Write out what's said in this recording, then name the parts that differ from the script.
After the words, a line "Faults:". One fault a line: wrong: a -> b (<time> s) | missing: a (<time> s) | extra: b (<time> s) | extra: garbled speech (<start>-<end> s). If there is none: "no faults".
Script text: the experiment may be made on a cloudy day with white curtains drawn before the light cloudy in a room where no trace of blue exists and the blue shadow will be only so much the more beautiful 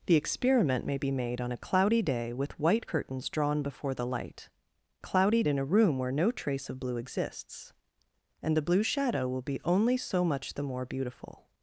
the experiment may be made on a cloudy day with white curtains drawn before the light cloudy in a room where no trace of blue exists and the blue shadow will be only so much the more beautiful
Faults:
no faults